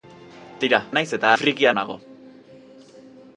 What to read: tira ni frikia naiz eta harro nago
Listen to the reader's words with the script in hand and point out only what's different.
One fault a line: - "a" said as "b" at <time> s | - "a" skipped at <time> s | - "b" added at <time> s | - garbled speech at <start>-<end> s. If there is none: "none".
- "ni frikia" skipped at 0.8 s
- "harro" said as "frikia" at 1.4 s